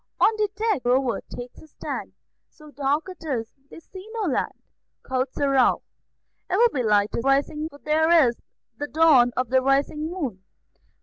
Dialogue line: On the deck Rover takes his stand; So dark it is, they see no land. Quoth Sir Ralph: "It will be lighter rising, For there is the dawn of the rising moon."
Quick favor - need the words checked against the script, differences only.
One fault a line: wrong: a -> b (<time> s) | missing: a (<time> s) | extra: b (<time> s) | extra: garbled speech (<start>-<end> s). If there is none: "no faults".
no faults